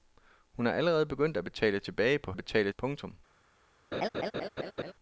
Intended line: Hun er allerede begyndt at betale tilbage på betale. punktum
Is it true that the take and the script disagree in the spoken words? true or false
false